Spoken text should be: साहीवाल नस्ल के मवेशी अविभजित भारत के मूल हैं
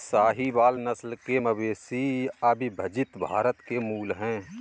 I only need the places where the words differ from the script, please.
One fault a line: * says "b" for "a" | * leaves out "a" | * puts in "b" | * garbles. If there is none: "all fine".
all fine